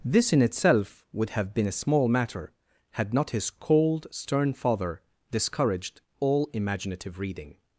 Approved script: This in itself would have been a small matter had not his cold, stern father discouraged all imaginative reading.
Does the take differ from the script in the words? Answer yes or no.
no